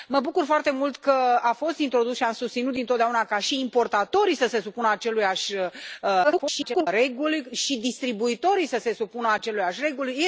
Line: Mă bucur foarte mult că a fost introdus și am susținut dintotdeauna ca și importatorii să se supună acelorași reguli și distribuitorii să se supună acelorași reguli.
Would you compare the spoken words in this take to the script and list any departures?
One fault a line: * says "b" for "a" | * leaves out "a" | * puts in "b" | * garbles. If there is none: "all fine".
* garbles